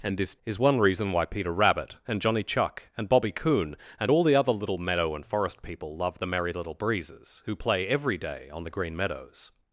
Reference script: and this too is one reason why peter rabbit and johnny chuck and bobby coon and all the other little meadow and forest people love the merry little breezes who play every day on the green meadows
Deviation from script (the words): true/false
true